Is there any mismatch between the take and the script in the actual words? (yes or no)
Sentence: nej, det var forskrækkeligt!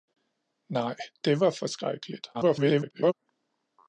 yes